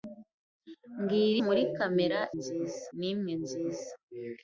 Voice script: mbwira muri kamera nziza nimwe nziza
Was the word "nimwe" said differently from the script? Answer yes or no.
no